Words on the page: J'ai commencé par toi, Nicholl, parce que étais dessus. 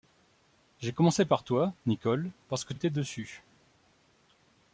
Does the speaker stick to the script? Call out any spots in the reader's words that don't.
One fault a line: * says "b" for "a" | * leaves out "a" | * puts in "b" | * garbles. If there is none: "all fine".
all fine